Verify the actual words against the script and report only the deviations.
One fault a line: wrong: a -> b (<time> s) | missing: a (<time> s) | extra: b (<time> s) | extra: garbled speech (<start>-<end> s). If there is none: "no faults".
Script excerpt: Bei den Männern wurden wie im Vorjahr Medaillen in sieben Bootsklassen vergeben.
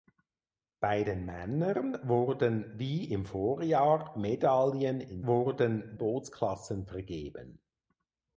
wrong: sieben -> wurden (5.3 s)